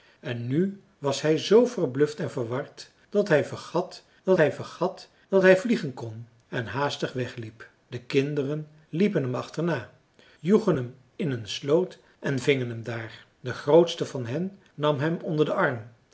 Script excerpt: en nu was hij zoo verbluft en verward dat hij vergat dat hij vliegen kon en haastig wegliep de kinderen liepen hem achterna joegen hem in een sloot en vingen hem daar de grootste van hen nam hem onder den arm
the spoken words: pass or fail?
fail